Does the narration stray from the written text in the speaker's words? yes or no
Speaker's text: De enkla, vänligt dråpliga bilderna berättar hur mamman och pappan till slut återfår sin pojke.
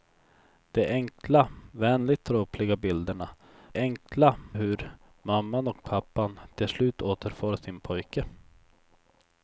yes